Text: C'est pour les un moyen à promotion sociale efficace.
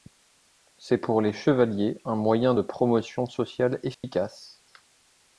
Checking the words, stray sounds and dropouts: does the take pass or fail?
fail